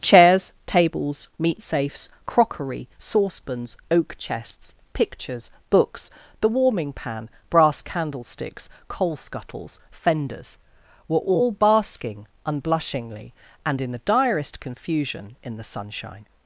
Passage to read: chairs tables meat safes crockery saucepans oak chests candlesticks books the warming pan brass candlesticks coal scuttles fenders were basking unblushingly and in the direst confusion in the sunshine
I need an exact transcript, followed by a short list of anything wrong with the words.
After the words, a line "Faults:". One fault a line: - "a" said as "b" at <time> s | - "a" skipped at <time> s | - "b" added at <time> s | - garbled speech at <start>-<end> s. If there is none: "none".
chairs tables meat safes crockery saucepans oak chests pictures books the warming pan brass candlesticks coal scuttles fenders were all basking unblushingly and in the direst confusion in the sunshine
Faults:
- "candlesticks" said as "pictures" at 4.9 s
- "all" added at 11.2 s